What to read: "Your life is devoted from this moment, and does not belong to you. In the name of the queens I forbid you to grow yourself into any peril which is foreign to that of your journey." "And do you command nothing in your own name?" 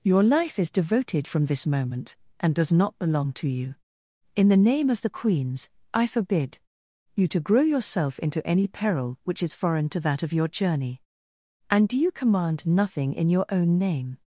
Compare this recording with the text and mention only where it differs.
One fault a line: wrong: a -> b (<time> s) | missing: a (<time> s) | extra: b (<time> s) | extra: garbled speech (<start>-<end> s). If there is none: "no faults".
no faults